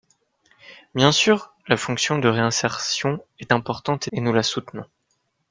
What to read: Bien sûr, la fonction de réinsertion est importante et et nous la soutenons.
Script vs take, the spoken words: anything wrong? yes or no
no